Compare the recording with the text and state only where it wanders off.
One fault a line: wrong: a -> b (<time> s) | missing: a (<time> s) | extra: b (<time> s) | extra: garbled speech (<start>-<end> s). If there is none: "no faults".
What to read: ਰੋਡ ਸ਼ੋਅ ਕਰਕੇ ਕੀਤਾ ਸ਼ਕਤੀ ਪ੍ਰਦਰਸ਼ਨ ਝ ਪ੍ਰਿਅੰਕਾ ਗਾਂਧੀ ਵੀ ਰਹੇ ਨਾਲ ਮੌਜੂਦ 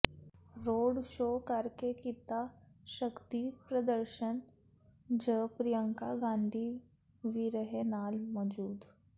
no faults